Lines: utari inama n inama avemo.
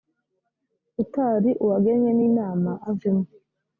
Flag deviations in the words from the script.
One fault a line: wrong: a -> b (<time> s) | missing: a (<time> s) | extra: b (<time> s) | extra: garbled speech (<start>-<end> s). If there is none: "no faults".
wrong: inama -> uwagenwe (1.6 s)